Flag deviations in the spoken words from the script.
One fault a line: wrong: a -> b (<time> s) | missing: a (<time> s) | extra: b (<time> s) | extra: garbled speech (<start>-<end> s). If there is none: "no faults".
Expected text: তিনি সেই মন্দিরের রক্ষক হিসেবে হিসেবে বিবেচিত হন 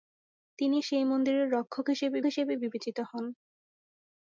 no faults